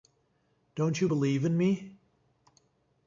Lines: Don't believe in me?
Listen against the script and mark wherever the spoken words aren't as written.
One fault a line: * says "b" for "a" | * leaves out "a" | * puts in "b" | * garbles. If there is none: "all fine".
* puts in "you"